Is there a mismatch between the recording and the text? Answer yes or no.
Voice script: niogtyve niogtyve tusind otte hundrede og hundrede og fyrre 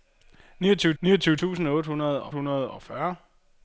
no